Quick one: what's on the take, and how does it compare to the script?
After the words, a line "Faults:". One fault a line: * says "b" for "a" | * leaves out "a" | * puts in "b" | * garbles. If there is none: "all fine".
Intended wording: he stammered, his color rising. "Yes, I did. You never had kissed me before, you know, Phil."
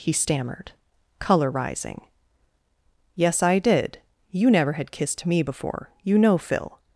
he stammered, color rising. "Yes, I did. You never had kissed me before, you know, Phil."
Faults:
* leaves out "his"